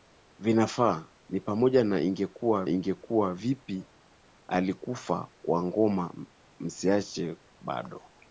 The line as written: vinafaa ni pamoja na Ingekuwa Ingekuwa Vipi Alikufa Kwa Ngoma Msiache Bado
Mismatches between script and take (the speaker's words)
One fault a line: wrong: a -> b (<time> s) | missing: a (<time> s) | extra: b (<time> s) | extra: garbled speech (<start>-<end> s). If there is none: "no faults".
no faults